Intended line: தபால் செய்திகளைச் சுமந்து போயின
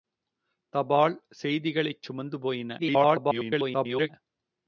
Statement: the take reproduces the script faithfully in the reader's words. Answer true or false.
false